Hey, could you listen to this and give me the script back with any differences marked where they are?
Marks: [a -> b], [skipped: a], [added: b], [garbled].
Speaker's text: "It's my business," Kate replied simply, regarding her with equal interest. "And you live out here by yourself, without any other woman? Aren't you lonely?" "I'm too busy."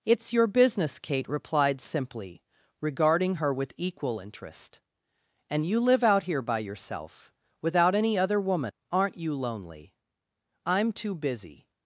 "It's [my -> your] business," Kate replied simply, regarding her with equal interest. "And you live out here by yourself, without any other woman? Aren't you lonely?" "I'm too busy."